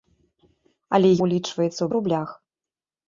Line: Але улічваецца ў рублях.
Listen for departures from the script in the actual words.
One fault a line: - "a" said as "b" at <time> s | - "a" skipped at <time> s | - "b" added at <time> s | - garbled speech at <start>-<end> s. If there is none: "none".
none